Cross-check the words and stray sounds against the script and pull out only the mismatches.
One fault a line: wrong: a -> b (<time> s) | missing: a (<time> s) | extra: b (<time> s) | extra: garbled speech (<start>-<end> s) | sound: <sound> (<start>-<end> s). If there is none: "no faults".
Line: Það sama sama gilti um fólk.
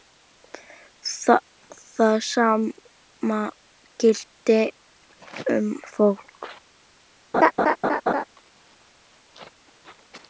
missing: sama (3.4 s)
sound: laugh (7.3-8.2 s)